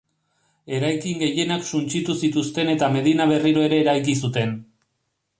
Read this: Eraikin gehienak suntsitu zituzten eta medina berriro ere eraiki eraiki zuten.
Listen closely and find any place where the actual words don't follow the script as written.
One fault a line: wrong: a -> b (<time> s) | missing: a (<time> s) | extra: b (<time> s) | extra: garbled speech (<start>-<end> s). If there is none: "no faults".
missing: eraiki (4.2 s)